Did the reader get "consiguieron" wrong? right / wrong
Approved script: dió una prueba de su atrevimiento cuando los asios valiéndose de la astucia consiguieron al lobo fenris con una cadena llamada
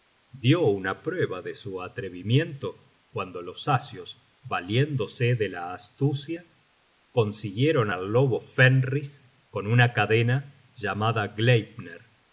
right